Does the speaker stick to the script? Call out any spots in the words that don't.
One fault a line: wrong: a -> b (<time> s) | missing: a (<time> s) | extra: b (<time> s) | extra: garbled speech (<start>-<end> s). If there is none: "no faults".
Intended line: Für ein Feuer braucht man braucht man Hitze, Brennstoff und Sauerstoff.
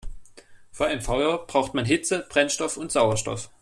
missing: braucht man (1.9 s)